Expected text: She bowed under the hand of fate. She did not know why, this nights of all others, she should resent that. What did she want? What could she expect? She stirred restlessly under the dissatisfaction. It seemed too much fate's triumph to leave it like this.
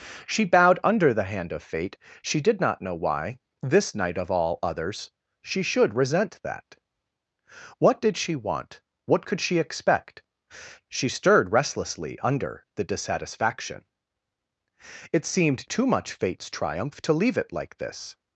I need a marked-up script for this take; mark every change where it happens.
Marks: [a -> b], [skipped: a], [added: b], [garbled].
She bowed under the hand of fate. She did not know why, this [nights -> night] of all others, she should resent that. What did she want? What could she expect? She stirred restlessly under the dissatisfaction. It seemed too much fate's triumph to leave it like this.